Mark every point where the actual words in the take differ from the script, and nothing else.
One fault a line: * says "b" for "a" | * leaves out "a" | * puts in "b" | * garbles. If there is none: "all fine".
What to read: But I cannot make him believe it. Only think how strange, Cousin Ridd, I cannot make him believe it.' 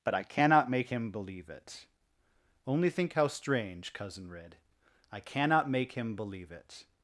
all fine